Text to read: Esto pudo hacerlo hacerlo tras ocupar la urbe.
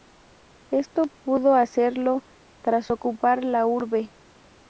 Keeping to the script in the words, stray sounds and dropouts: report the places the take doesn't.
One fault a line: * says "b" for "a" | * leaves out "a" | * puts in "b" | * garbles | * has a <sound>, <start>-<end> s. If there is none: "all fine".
* leaves out "hacerlo"